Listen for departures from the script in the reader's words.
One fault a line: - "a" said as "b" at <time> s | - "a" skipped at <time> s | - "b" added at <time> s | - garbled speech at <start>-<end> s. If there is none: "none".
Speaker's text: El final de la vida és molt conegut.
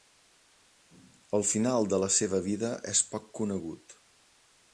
- "seva" added at 2.2 s
- "molt" said as "poc" at 3.1 s